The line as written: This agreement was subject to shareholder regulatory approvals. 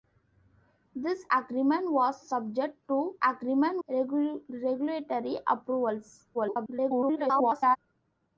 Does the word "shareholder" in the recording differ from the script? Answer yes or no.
yes